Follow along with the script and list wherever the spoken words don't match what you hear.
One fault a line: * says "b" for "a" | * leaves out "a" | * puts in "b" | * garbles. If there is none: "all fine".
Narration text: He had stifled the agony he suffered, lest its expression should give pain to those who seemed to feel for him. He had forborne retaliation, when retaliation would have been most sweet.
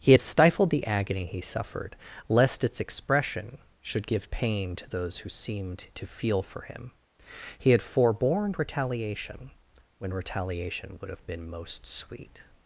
all fine